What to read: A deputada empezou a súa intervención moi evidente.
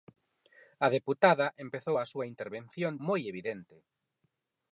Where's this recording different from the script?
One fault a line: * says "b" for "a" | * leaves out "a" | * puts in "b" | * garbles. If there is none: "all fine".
all fine